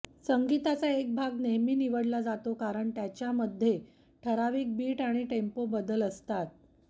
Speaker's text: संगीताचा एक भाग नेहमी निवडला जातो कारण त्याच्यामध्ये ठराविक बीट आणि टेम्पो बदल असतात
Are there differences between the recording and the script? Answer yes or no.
no